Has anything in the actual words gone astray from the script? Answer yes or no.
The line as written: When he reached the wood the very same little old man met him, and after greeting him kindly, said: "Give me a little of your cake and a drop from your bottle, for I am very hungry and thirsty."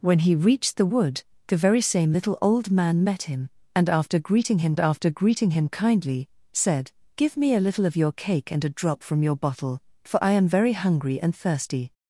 yes